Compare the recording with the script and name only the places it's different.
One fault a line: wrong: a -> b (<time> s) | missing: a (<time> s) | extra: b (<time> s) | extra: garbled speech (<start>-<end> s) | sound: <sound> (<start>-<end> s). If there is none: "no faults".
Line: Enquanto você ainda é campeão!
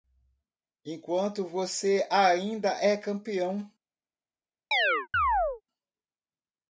sound: chirp (4.7-5.6 s)